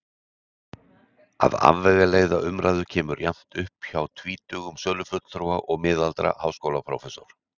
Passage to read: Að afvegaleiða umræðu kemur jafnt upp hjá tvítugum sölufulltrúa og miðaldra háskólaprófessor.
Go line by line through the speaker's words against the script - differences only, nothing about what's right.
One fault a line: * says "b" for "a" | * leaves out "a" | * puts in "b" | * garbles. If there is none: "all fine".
all fine